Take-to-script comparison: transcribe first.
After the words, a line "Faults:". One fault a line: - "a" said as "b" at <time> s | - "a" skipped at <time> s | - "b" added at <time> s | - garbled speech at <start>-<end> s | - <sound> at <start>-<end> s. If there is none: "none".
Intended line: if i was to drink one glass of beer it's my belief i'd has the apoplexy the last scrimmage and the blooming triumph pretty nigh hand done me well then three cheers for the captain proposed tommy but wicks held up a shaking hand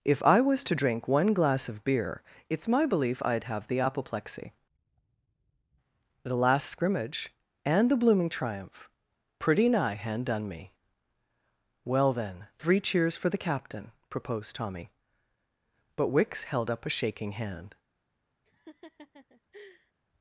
if i was to drink one glass of beer it's my belief i'd have the apoplexy the last scrimmage and the blooming triumph pretty nigh hand done me well then three cheers for the captain proposed tommy but wicks held up a shaking hand
Faults:
- "has" said as "have" at 3.4 s
- laugh at 18.4-19.9 s